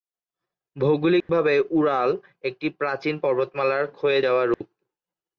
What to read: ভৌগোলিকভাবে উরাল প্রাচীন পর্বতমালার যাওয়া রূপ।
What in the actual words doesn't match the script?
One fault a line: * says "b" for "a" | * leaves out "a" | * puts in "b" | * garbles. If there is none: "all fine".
* puts in "একটি"
* puts in "ক্ষয়ে"